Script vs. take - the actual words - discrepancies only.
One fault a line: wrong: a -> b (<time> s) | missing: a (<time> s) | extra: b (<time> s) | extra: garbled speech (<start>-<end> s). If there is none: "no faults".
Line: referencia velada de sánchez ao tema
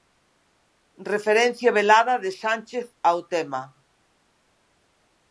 no faults